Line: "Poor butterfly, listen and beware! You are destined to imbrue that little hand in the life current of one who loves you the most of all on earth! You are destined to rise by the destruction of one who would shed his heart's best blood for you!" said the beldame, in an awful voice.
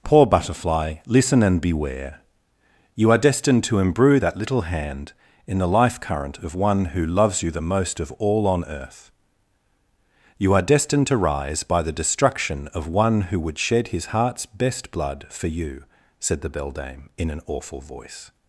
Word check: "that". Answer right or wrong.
right